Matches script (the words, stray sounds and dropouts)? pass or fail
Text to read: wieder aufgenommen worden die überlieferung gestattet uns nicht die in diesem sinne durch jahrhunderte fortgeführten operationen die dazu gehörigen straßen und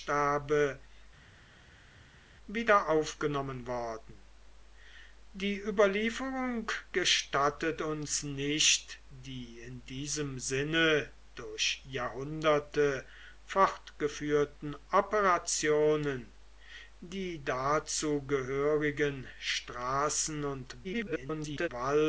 fail